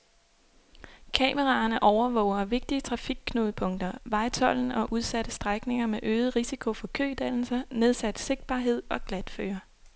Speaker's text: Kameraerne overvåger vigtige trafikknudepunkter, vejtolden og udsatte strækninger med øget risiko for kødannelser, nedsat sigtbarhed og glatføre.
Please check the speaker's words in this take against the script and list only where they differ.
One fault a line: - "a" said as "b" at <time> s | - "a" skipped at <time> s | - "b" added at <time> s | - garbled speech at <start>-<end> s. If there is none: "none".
none